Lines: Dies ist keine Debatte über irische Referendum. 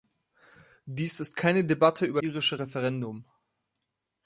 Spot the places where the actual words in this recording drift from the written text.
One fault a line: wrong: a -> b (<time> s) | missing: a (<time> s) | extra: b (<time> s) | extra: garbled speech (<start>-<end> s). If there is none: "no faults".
no faults